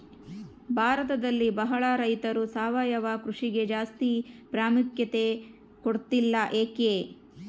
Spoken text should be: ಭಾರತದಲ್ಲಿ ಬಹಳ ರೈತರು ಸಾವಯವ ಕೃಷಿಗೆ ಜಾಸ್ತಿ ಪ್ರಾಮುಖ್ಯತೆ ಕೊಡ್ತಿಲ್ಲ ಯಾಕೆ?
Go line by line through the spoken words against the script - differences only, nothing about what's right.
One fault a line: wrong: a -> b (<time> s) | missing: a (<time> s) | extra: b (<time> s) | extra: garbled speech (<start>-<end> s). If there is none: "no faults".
no faults